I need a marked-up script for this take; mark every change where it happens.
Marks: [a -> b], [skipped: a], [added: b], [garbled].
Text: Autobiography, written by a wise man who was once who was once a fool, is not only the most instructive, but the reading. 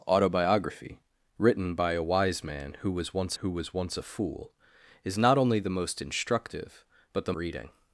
Autobiography, written by a wise man who was once who was once a fool, is not only the most instructive, but the reading.